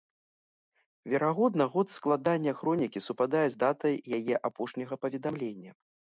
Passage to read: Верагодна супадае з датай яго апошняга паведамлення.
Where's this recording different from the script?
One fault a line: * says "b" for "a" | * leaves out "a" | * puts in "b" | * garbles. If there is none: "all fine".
* puts in "год складання хронікі"
* says "яе" for "яго"